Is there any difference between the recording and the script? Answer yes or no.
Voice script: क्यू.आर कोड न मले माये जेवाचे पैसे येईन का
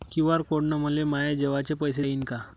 no